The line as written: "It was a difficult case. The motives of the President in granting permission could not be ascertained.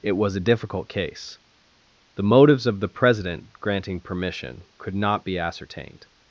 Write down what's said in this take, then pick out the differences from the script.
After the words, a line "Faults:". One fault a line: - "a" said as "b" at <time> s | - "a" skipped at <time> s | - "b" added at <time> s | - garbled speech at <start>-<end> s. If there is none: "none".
"It was a difficult case. The motives of the President granting permission could not be ascertained.
Faults:
- "in" skipped at 3.5 s